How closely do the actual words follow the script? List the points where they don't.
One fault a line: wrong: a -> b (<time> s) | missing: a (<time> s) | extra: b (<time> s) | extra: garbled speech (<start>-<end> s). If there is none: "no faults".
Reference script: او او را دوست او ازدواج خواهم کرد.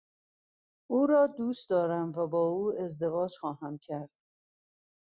missing: او (1.1 s)
extra: دارم و با (1.7 s)